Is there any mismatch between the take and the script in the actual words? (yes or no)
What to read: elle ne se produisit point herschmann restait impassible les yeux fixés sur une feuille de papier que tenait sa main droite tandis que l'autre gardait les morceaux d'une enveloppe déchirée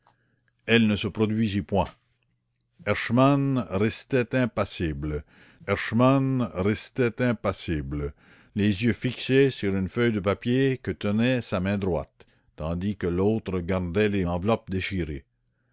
yes